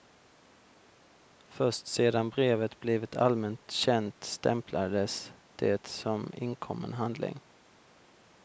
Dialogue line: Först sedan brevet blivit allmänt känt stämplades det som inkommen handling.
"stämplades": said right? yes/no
yes